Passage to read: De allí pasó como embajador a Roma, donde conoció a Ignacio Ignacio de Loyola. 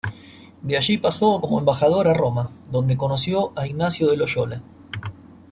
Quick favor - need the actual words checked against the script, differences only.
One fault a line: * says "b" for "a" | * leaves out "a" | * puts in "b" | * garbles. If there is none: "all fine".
* leaves out "Ignacio"